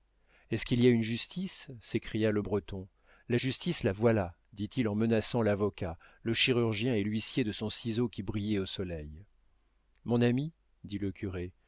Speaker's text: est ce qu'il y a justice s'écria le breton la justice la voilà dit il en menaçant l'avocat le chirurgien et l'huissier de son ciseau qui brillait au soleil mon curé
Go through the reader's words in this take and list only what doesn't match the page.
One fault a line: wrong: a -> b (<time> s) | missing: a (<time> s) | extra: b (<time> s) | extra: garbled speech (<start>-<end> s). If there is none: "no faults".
extra: une (0.9 s)
extra: ami dit le (10.2 s)